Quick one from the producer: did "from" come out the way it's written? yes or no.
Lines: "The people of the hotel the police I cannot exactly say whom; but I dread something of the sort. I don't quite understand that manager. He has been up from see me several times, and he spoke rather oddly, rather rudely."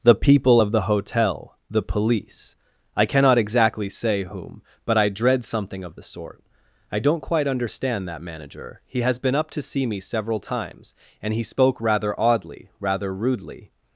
no